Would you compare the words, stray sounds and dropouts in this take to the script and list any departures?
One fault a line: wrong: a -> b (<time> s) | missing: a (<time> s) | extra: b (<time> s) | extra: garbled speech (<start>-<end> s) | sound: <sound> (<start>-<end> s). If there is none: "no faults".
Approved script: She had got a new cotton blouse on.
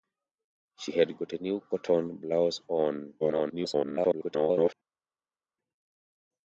extra: garbled speech (3.2-4.7 s)